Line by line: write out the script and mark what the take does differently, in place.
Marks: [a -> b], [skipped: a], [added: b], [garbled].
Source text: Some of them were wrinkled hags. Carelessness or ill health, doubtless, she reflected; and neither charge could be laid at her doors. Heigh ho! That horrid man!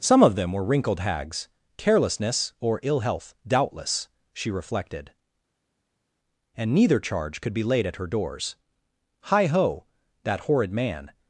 Some of them were wrinkled hags. Carelessness or ill health, doubtless, she reflected; and neither charge could be laid at her doors. Heigh ho! That horrid man!